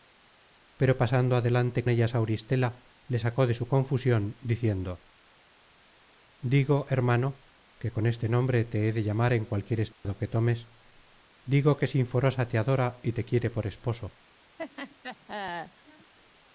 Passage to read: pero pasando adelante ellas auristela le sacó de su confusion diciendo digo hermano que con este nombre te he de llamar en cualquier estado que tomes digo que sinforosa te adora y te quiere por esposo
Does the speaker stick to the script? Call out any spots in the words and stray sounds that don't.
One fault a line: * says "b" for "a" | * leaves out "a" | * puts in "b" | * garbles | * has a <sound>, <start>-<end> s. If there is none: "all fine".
* has a dropout, 9.9-10.1 s
* has a laugh, 14.6-16.1 s